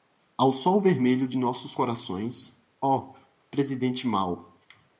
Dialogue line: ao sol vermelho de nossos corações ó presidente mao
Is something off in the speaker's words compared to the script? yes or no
no